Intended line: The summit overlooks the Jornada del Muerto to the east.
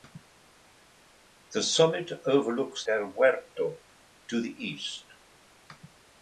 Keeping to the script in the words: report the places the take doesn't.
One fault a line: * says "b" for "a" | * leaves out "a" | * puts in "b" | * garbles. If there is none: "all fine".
* leaves out "the Jornada"